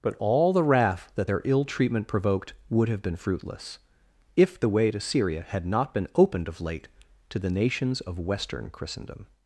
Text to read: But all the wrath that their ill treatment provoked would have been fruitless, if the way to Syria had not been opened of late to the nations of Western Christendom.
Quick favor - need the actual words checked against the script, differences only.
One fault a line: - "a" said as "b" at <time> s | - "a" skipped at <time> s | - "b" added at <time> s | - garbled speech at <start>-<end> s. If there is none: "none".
none